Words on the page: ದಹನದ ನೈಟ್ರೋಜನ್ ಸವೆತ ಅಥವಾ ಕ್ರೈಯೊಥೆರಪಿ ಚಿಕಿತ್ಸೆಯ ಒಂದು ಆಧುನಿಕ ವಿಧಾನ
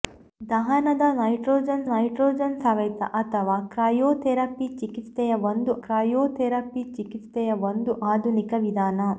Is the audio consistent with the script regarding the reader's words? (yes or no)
no